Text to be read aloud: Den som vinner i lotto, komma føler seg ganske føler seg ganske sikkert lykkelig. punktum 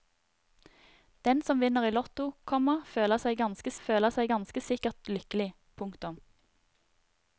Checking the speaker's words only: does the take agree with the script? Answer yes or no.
yes